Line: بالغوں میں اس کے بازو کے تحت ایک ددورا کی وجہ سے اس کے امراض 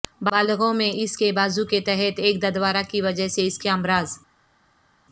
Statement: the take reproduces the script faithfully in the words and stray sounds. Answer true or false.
true